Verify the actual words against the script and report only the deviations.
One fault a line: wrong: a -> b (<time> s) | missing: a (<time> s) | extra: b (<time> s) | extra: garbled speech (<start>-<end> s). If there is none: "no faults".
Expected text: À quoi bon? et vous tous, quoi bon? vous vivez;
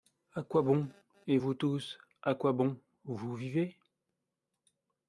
extra: à (2.2 s)